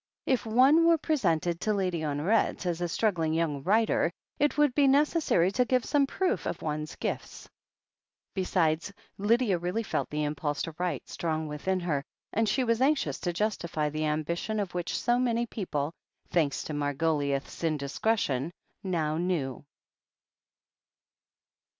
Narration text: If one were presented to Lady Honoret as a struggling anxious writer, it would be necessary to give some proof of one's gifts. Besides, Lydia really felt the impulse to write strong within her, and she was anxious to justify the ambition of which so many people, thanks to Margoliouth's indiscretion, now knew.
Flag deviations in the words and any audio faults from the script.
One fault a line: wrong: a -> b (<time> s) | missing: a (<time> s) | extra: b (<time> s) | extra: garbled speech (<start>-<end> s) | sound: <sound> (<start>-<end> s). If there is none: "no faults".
wrong: anxious -> young (3.4 s)